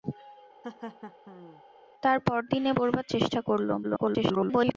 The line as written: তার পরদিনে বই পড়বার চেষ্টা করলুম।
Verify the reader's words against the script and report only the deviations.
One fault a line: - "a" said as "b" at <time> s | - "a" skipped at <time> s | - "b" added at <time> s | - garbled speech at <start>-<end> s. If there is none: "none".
- "বই" skipped at 2.7 s
- garbled speech at 3.8-4.8 s